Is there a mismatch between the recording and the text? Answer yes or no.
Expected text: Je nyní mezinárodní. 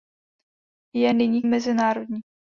no